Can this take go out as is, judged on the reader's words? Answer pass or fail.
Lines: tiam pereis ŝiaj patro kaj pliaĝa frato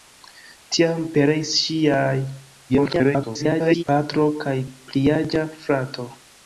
fail